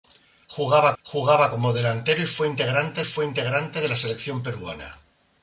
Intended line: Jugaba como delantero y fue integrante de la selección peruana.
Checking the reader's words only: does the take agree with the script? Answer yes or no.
no